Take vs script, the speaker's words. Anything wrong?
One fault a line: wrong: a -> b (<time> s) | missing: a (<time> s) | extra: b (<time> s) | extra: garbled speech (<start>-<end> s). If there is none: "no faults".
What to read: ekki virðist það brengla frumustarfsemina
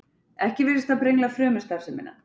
no faults